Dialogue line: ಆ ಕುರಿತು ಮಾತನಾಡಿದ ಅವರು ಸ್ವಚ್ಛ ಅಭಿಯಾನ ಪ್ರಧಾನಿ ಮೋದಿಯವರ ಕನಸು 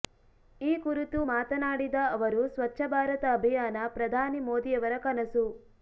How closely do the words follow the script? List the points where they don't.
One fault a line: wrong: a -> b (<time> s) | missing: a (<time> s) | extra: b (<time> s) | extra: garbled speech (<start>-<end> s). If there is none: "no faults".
wrong: ಆ -> ಈ (0.6 s)
extra: ಭಾರತ (2.9 s)